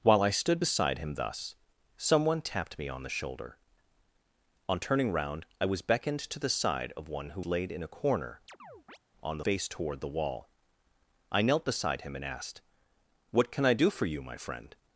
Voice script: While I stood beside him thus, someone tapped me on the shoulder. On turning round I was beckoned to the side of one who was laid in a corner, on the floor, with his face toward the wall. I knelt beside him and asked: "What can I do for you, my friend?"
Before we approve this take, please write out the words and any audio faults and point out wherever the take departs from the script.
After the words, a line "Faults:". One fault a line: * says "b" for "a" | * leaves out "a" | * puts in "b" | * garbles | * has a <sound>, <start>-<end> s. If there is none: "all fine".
While I stood beside him thus, someone tapped me on the shoulder. On turning round I was beckoned to the side of one who laid in a corner, on the face toward the wall. I knelt beside him and asked: "What can I do for you, my friend?"
Faults:
* leaves out "was"
* has a chirp, 8.5-9.0 s
* leaves out "floor with his"